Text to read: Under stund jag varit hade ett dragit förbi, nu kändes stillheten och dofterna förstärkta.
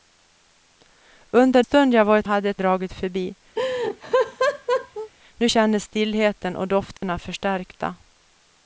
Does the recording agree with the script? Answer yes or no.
yes